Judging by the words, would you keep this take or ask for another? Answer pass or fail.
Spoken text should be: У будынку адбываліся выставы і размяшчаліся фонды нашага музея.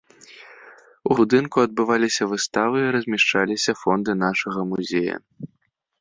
pass